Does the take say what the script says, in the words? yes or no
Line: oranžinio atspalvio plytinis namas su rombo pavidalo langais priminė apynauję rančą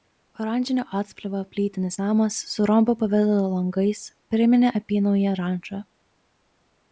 yes